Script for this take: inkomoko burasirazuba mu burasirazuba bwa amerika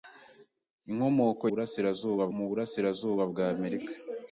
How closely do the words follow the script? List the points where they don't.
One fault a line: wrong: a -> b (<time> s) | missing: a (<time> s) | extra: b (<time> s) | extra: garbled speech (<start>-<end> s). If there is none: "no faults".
no faults